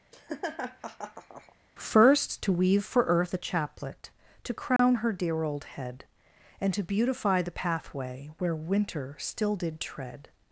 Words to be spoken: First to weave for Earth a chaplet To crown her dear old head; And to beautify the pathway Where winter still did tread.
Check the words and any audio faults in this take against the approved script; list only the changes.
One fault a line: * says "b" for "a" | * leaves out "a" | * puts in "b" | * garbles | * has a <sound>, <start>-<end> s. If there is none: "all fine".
* has a laugh, 0.1-1.6 s
* has a dropout, 4.8-4.8 s